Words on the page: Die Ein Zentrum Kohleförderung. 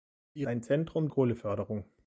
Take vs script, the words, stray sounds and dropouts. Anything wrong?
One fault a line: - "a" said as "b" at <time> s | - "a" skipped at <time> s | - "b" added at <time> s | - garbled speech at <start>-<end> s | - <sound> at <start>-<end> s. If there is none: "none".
none